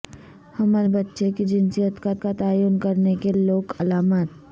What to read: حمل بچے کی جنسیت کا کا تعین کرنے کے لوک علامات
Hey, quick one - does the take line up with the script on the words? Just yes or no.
yes